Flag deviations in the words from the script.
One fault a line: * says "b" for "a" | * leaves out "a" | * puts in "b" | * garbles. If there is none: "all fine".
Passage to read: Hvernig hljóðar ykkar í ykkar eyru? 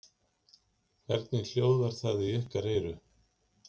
* says "það" for "ykkar"